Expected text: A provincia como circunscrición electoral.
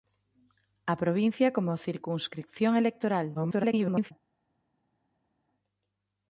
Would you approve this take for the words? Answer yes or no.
no